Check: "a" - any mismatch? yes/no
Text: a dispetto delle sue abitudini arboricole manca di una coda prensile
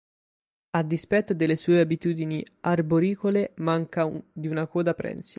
no